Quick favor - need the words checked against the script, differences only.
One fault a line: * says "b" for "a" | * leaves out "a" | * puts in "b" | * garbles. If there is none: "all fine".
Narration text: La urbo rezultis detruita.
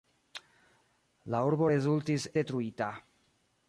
all fine